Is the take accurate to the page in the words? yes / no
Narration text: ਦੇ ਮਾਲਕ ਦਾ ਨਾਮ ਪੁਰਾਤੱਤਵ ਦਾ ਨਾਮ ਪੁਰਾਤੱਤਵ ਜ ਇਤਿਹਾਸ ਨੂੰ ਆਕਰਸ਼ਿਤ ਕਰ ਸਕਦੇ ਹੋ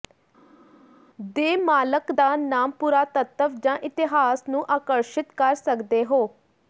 no